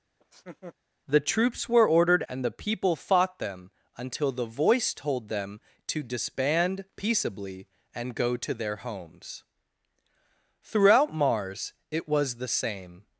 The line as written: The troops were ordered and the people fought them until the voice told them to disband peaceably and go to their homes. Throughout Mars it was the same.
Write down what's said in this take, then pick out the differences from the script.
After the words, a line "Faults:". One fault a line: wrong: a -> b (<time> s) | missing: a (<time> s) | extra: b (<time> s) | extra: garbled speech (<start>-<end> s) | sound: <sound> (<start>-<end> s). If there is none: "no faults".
The troops were ordered and the people fought them until the voice told them to disband peaceably and go to their homes. Throughout Mars it was the same.
Faults:
sound: laugh (0.2-0.8 s)